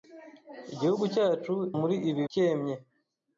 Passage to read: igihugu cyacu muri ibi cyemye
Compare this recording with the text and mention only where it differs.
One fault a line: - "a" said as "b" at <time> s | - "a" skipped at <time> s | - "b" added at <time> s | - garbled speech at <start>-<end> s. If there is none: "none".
none